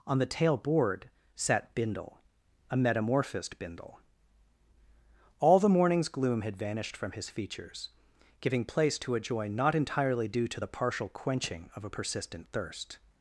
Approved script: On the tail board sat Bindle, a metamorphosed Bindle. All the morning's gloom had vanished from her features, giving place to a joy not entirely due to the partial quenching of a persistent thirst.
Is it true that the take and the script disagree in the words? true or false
true